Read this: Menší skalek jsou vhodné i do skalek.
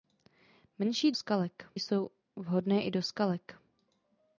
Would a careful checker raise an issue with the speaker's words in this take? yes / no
no